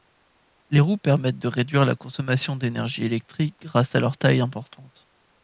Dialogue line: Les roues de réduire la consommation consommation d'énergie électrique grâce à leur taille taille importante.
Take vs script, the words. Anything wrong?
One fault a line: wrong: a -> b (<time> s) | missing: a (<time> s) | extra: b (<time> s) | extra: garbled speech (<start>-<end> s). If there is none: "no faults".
extra: permettent (1.0 s)
missing: consommation (2.5 s)
missing: taille (4.4 s)